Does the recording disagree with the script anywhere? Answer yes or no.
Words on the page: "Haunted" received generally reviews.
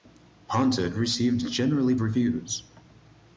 no